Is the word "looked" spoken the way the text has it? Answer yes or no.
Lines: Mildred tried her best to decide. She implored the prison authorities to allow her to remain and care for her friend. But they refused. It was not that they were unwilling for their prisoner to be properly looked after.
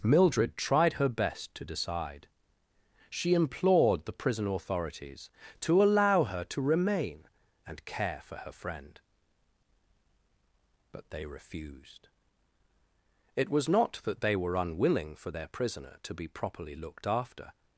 yes